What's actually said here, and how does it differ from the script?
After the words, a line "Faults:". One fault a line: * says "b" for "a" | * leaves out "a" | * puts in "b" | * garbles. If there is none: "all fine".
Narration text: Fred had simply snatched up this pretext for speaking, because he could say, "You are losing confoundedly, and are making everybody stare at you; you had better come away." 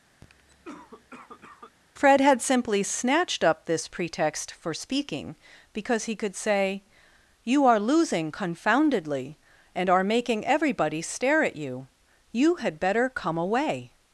Fred had simply snatched up this pretext for speaking, because he could say, "You are losing confoundedly, and are making everybody stare at you; you had better come away."
Faults:
all fine